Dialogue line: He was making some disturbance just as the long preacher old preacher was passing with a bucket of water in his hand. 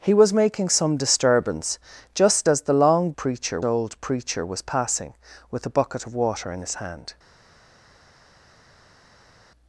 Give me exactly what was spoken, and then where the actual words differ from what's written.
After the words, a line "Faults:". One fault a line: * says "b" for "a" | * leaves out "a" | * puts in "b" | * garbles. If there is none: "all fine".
He was making some disturbance just as the long preacher old preacher was passing with a bucket of water in his hand.
Faults:
all fine